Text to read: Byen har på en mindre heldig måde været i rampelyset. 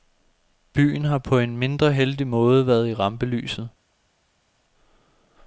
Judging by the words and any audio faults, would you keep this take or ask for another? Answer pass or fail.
pass